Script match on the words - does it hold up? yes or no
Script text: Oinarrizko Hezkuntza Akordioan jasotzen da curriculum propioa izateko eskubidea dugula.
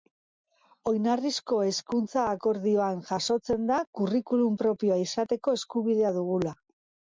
yes